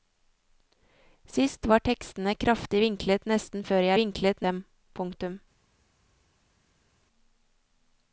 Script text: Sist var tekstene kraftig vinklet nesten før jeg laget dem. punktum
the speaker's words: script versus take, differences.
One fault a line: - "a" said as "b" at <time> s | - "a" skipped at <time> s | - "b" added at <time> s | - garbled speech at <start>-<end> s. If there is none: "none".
- "laget" said as "vinklet" at 4.0 s